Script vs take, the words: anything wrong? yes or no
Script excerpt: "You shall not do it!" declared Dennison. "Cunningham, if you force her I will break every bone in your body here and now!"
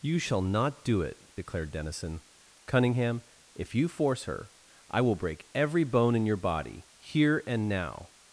no